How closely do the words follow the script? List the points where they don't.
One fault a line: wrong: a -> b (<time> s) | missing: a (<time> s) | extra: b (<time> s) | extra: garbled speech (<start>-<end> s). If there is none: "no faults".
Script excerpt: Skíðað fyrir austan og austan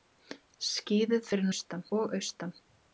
no faults